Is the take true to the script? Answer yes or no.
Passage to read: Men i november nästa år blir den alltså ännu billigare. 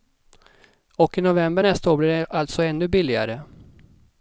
no